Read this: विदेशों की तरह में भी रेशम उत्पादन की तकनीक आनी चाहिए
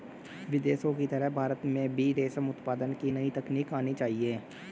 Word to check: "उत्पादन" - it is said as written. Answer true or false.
true